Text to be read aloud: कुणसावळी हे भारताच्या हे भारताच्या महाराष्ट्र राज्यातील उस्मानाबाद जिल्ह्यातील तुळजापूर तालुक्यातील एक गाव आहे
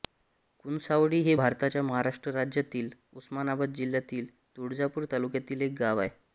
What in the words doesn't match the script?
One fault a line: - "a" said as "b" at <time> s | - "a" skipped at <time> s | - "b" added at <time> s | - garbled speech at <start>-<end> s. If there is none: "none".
- "हे भारताच्या" skipped at 1.8 s